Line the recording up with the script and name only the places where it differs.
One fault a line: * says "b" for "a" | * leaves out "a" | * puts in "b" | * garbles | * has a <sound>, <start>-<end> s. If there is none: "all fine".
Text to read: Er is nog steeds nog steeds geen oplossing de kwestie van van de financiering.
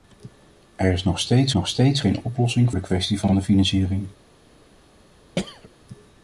* has a throat clearing, 5.4-5.7 s